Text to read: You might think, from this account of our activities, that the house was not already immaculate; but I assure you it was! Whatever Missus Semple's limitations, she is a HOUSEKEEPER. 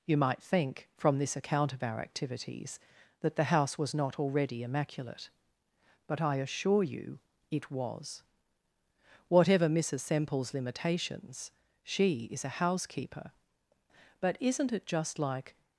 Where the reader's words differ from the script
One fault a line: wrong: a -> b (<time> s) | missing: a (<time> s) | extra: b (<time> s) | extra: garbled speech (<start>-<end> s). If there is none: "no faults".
extra: But isn't it just like (14.2 s)